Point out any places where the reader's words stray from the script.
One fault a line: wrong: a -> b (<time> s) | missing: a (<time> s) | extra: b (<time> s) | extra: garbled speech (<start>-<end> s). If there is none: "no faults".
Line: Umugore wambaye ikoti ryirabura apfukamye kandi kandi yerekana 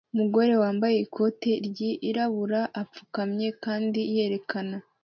missing: kandi (4.0 s)